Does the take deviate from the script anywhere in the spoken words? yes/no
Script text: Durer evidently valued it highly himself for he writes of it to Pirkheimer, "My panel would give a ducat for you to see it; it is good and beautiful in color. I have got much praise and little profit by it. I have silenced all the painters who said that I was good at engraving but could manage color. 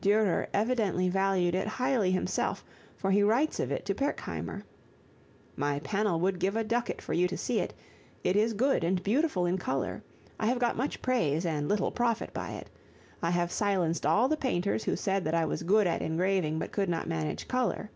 yes